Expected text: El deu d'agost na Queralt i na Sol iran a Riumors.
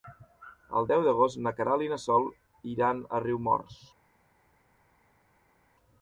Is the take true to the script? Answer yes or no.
yes